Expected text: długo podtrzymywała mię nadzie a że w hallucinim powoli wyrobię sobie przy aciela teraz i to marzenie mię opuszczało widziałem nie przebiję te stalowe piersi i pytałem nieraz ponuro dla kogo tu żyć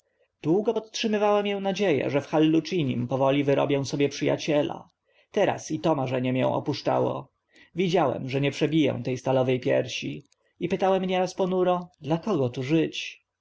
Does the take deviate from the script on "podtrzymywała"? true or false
false